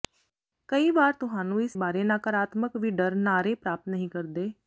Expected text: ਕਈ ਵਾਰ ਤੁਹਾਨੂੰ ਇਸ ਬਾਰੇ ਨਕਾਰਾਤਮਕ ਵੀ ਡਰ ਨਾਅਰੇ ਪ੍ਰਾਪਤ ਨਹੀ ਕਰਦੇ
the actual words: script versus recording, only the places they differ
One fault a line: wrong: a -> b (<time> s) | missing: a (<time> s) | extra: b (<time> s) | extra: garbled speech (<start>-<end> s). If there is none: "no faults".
no faults